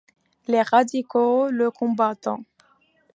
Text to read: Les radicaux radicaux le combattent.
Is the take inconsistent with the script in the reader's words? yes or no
yes